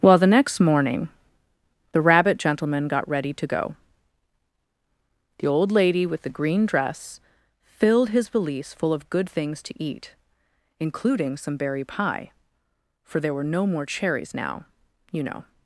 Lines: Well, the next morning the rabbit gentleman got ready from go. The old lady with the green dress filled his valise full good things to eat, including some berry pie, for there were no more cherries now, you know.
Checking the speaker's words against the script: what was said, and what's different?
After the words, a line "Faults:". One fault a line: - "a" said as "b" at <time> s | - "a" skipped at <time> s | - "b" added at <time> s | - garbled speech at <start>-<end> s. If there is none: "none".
Well, the next morning the rabbit gentleman got ready to go. The old lady with the green dress filled his valise full of good things to eat, including some berry pie, for there were no more cherries now, you know.
Faults:
- "from" said as "to" at 3.3 s
- "of" added at 8.9 s